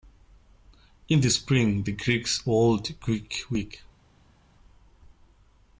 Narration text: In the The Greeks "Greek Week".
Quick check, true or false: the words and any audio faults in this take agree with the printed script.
false